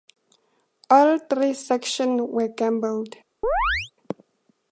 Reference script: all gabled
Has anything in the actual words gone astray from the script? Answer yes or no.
yes